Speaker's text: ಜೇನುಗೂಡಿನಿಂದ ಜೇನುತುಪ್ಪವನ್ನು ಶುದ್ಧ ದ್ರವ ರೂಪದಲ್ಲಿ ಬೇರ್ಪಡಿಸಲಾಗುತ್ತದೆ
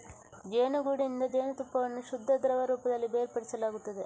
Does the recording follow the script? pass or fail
pass